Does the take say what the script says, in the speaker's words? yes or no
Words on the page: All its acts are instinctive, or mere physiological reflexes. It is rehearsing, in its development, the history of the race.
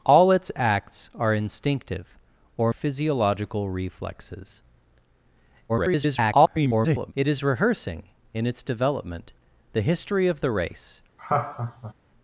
no